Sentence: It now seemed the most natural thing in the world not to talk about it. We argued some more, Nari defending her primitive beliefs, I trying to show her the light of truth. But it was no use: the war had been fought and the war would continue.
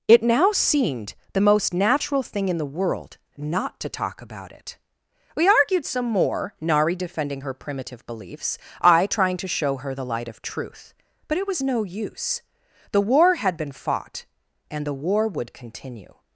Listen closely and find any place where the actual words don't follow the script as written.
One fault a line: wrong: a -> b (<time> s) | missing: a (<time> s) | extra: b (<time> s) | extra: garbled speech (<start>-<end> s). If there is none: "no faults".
no faults